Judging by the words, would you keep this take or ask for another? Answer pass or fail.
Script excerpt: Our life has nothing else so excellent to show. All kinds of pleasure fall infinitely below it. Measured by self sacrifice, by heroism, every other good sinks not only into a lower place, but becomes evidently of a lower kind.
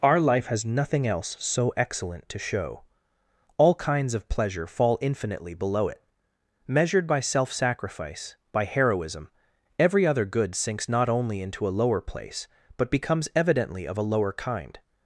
pass